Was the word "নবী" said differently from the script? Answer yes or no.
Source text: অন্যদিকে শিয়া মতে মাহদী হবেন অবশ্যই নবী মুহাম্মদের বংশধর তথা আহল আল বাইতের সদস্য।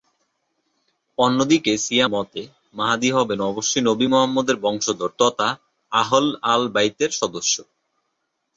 no